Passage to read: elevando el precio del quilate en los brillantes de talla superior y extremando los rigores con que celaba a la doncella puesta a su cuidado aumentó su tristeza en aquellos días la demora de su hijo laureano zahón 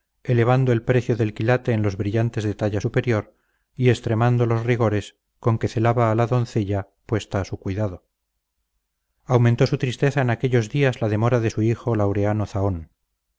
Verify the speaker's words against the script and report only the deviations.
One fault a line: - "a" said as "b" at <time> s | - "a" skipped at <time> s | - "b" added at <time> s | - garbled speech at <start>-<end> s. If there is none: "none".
none